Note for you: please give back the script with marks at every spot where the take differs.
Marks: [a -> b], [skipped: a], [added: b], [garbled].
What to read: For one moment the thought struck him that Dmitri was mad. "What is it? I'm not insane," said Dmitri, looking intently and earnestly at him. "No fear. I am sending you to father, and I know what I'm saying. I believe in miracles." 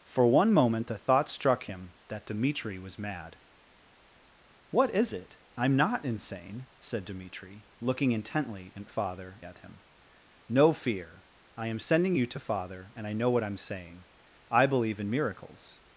For one moment the thought struck him that Dmitri was mad. "What is it? I'm not insane," said Dmitri, looking intently and [earnestly -> father] at him. "No fear. I am sending you to father, and I know what I'm saying. I believe in miracles."